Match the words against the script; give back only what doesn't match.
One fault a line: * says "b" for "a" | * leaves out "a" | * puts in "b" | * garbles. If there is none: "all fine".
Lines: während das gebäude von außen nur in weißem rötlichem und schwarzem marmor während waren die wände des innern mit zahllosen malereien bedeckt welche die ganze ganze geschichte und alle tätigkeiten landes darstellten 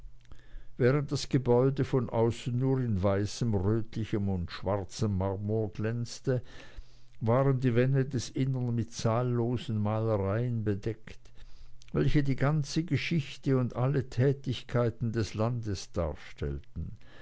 * says "glänzte" for "während"
* leaves out "ganze"
* puts in "des"